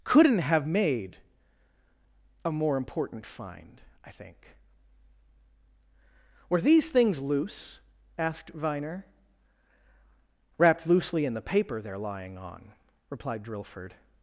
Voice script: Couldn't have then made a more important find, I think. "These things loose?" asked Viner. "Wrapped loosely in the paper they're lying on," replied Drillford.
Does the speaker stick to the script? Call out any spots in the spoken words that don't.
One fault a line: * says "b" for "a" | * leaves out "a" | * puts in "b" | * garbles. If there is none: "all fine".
* leaves out "then"
* puts in "Were"